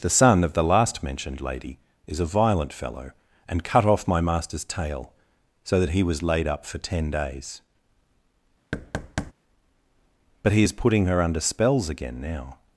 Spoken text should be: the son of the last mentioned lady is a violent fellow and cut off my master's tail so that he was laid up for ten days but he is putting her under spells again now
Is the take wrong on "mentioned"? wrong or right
right